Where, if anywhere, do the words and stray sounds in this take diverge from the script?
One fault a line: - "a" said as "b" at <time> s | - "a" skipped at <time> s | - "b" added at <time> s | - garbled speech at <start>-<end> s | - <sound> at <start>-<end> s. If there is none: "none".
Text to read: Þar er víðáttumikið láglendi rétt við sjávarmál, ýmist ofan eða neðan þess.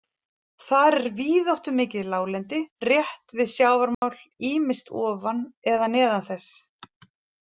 - dropout at 3.9-4.0 s